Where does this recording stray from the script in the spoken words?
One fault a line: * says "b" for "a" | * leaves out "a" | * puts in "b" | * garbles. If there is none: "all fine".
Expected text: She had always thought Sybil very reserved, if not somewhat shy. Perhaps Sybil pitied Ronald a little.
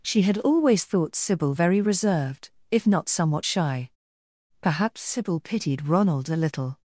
all fine